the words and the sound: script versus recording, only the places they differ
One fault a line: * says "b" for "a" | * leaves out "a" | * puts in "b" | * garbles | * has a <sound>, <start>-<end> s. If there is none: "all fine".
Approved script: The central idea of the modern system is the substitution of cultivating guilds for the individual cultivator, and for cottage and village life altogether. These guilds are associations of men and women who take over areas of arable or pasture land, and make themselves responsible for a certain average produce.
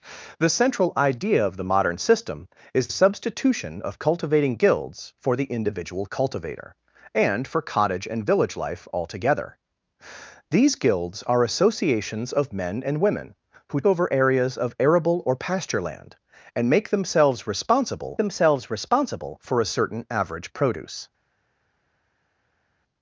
* leaves out "the"
* leaves out "take"
* puts in "themselves responsible"